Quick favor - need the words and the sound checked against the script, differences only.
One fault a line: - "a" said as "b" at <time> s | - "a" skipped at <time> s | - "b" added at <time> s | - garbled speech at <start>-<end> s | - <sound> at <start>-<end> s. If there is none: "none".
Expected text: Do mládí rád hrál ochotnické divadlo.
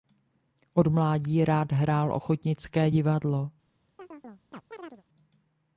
- "Do" said as "Od" at 0.7 s
- chirp at 4.0-5.0 s